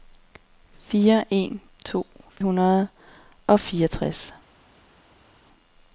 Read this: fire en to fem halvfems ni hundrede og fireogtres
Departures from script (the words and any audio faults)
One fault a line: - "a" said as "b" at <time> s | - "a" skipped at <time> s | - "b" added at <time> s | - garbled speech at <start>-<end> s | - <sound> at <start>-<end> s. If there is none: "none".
- "fem halvfems ni" skipped at 2.1 s